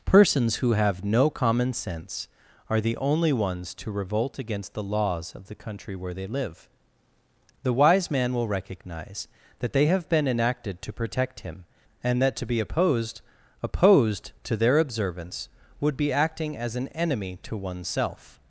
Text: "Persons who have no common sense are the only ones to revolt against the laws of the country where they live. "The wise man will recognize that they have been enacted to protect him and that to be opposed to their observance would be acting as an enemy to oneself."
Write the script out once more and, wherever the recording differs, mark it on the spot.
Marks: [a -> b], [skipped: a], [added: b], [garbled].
"Persons who have no common sense are the only ones to revolt against the laws of the country where they live. "The wise man will recognize that they have been enacted to protect him and that to be opposed [added: opposed] to their observance would be acting as an enemy to oneself."